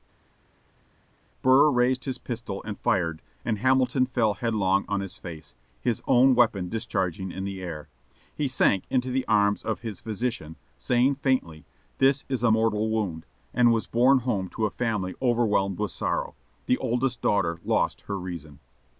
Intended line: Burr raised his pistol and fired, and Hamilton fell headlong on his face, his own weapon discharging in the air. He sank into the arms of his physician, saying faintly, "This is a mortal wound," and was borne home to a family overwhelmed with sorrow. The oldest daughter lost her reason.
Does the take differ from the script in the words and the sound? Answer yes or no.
no